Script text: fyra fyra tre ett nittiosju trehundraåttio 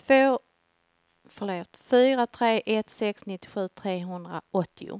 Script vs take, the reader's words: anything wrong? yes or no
yes